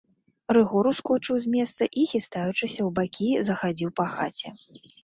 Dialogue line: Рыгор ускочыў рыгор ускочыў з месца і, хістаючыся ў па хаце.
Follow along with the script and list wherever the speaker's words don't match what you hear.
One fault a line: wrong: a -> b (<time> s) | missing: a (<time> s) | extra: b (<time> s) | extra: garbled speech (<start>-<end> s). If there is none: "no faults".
missing: рыгор ускочыў (1.4 s)
extra: бакі захадзіў (3.0 s)